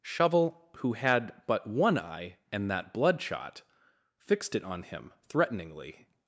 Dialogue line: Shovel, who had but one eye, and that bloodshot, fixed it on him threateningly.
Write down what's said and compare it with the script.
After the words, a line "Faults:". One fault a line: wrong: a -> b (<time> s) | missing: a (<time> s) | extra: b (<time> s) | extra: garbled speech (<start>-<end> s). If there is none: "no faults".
Shovel, who had but one eye, and that bloodshot, fixed it on him threateningly.
Faults:
no faults